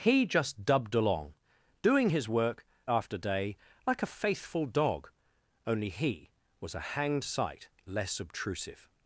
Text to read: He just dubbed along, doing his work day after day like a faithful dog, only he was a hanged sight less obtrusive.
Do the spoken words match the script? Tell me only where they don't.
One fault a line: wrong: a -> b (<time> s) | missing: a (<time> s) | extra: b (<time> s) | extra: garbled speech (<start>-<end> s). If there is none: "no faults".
missing: day (2.6 s)